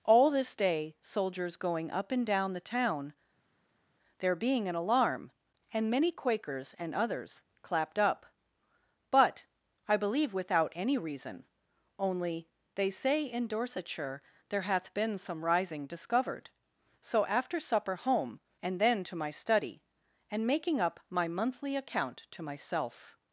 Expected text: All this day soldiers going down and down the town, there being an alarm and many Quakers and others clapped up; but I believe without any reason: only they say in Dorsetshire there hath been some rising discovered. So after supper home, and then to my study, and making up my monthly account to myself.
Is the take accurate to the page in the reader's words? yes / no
no